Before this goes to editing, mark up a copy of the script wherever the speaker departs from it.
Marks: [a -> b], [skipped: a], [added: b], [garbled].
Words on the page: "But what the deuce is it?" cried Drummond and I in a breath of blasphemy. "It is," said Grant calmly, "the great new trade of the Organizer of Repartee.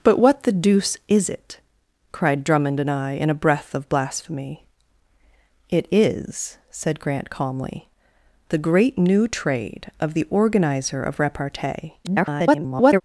"But what the deuce is it?" cried Drummond and I in a breath of blasphemy. "It is," said Grant calmly, "the great new trade of the Organizer of Repartee. [garbled]